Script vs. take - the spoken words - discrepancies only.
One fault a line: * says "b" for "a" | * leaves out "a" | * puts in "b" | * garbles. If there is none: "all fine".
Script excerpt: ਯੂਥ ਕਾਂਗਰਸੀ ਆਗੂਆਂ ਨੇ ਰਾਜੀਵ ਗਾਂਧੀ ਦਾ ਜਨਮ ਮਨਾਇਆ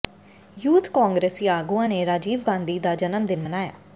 * puts in "ਦਿਨ"